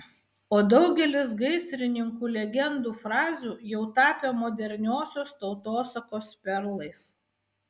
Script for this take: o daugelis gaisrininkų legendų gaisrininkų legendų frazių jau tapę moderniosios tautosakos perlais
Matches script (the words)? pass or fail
fail